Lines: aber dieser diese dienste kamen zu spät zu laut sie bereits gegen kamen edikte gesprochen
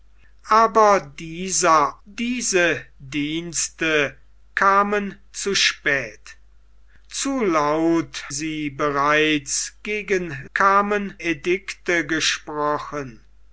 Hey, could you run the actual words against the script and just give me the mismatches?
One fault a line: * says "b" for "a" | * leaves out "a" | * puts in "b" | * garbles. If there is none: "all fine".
all fine